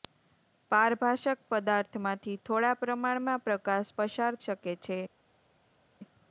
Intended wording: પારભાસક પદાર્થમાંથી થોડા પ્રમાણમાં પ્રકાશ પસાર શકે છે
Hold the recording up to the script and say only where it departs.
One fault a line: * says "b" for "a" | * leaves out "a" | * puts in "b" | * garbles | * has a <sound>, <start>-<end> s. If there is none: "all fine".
all fine